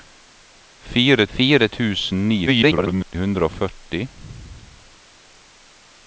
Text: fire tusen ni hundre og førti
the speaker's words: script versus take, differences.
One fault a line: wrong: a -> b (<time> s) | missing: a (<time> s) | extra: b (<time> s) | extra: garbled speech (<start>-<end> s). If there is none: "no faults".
extra: fire (1.3 s)
extra: garbled speech (2.5-3.2 s)